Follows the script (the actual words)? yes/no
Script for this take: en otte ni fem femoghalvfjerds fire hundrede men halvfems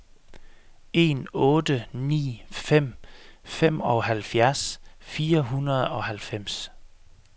no